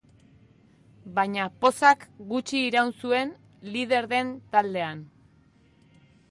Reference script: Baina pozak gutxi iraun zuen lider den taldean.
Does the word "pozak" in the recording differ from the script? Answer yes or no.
no